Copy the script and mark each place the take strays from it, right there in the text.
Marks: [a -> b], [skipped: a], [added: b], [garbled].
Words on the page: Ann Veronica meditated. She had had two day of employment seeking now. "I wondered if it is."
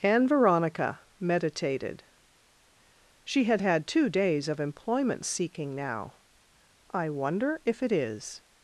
Ann Veronica meditated. She had had two [day -> days] of employment seeking now. "I [wondered -> wonder] if it is."